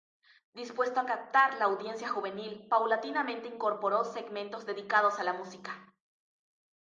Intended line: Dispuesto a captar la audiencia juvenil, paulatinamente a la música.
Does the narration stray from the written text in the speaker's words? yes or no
yes